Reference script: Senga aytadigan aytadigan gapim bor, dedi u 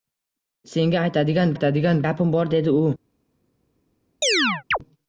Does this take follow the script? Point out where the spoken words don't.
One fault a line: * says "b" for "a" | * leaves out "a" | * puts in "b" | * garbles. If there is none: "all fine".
all fine